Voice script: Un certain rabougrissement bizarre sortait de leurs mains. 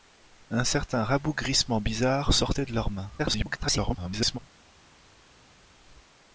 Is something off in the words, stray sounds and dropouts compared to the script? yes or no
yes